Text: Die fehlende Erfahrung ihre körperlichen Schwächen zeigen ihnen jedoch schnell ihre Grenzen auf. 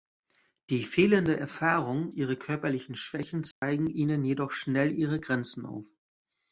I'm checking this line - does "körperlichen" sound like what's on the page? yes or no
yes